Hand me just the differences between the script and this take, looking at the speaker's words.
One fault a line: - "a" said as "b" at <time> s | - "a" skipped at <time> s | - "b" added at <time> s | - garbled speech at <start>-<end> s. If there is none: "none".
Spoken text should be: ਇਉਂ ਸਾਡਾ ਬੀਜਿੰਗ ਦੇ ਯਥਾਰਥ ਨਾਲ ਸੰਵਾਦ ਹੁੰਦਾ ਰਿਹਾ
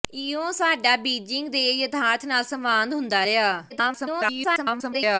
- garbled speech at 3.7-5.2 s